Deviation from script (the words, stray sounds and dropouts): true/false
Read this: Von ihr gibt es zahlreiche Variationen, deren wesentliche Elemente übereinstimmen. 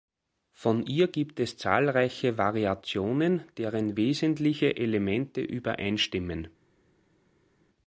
false